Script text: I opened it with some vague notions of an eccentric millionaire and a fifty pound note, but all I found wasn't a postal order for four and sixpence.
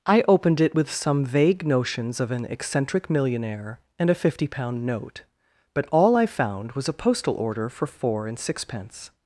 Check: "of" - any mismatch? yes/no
no